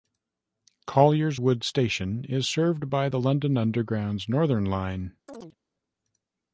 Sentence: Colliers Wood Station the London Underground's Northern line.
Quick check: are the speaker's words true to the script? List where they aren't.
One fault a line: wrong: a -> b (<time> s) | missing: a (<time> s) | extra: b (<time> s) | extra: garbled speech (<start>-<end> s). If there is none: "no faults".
extra: is served by (2.3 s)